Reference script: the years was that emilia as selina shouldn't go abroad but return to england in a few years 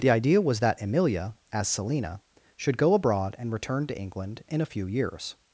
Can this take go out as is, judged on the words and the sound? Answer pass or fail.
fail